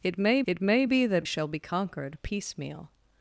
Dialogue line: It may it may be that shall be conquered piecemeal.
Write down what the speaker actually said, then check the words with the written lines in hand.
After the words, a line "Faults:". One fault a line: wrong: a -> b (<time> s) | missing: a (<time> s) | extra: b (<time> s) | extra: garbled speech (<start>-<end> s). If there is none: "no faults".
It may it may be that shall be conquered piecemeal.
Faults:
no faults